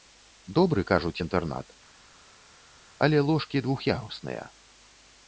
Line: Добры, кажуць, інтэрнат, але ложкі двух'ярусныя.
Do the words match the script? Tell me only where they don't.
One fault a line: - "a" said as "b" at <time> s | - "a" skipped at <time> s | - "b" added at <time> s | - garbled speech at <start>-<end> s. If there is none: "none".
none